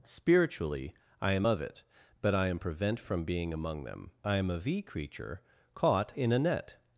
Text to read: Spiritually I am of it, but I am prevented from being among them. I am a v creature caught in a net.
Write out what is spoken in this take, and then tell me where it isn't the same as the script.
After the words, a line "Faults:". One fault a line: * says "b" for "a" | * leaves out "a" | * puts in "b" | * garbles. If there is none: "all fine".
Spiritually I am of it, but I am prevent from being among them. I am a v creature caught in a net.
Faults:
* says "prevent" for "prevented"